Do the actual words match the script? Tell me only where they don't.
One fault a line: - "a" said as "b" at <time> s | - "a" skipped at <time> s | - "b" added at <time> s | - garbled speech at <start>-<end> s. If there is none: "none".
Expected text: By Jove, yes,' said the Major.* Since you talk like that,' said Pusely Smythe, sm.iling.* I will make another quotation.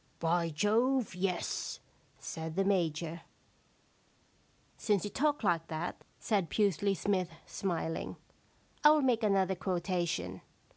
none